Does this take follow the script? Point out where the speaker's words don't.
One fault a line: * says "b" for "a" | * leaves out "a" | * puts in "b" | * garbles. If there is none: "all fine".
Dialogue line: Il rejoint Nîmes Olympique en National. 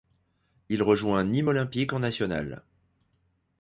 all fine